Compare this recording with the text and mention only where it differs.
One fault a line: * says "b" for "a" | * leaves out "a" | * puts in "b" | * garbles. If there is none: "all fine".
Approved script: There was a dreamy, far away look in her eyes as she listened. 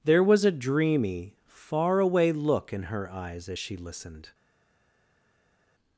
all fine